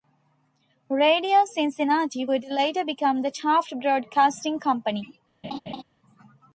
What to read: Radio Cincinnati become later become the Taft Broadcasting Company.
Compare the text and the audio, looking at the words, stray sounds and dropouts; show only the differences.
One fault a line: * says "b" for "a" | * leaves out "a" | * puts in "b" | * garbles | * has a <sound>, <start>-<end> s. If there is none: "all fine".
* says "would" for "become"
* has a laugh, 5.4-5.8 s